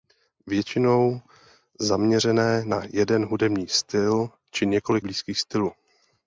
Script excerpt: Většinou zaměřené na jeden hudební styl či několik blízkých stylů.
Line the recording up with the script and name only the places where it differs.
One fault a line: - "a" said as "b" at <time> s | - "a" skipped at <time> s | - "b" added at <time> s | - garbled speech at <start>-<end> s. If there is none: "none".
none